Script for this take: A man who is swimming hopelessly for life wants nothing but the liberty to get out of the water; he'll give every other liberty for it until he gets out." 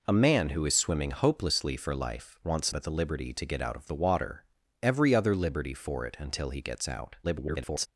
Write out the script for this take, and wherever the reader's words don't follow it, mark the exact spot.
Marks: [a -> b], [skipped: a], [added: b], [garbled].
A man who is swimming hopelessly for life wants [skipped: nothing] but the liberty to get out of the water; [skipped: he'll give] every other liberty for it until he gets out." [garbled]